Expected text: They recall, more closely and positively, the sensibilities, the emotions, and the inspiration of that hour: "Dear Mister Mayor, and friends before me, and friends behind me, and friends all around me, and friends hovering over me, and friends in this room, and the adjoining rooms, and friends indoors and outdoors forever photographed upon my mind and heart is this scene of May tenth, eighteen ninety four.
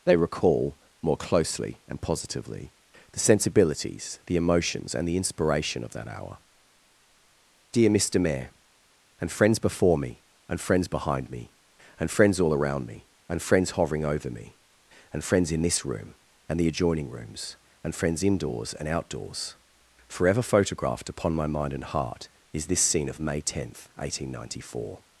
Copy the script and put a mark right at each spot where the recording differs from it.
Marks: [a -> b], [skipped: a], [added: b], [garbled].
They recall, more closely and positively, the sensibilities, the emotions, and the inspiration of that hour: "Dear Mister Mayor, and friends before me, and friends behind me, and friends all around me, and friends hovering over me, and friends in this room, and the adjoining rooms, and friends indoors and outdoors forever photographed upon my mind and heart is this scene of May tenth, eighteen ninety four.